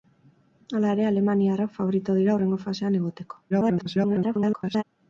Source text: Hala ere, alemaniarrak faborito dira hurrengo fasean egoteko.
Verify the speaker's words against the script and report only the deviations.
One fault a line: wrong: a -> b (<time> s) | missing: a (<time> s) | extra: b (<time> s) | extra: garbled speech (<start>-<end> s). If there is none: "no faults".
extra: garbled speech (3.5-4.8 s)